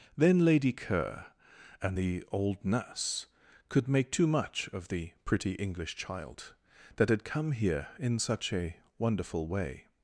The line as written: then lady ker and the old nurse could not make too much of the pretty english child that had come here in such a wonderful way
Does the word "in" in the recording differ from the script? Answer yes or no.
no